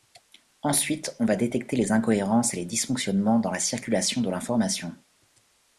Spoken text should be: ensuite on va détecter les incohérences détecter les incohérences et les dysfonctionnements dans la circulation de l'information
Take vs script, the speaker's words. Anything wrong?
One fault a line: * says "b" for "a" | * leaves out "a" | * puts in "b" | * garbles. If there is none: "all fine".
* leaves out "détecter les incohérences"